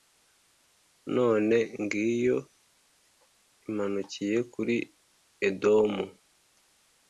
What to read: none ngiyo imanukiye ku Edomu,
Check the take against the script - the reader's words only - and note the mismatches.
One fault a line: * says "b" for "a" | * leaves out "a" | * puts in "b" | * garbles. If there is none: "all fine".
* says "kuri" for "ku"